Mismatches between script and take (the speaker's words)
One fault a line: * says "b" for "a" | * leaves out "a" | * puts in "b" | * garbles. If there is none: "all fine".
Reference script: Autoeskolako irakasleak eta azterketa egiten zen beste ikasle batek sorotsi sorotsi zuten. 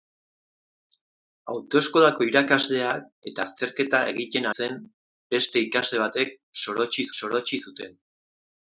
all fine